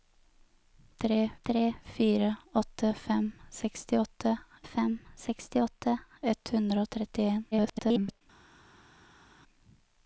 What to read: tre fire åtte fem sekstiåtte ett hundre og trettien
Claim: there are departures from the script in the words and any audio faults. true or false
true